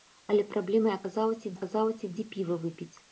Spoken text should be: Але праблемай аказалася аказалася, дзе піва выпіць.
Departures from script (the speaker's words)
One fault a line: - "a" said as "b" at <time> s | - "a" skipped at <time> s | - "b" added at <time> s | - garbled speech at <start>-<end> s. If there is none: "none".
none